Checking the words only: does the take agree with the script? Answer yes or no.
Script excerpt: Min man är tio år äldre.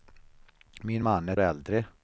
no